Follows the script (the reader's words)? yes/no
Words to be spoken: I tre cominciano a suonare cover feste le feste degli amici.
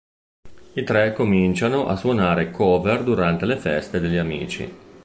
no